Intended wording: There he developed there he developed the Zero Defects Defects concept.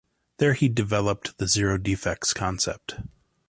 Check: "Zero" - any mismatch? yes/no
no